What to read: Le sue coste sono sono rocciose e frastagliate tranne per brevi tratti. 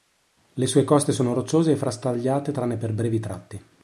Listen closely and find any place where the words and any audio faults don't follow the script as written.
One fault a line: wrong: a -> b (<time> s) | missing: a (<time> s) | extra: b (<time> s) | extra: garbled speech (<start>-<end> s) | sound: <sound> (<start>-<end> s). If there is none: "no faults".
missing: sono (1.3 s)